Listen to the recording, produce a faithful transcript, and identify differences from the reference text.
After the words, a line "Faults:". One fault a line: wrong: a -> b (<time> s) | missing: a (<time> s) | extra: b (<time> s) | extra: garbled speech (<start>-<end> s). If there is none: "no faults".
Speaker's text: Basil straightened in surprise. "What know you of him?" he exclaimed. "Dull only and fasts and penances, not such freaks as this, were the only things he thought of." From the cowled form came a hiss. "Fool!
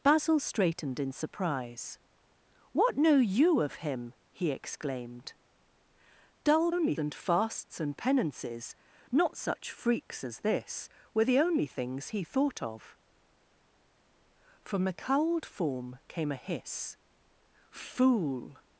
Basil straightened in surprise. "What know you of him?" he exclaimed. "Dull only and fasts and penances, not such freaks as this, were the only things he thought of." From the cowled form came a hiss. "Fool!
Faults:
no faults